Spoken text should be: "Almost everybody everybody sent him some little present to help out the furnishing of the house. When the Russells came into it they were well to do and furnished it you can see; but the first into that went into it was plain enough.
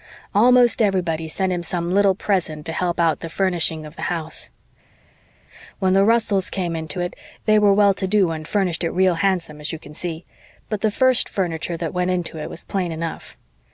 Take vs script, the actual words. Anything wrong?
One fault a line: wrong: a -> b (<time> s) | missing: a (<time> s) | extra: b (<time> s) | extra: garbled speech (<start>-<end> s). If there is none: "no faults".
missing: everybody (1.3 s)
extra: real handsome as (8.9 s)
wrong: into -> furniture (11.3 s)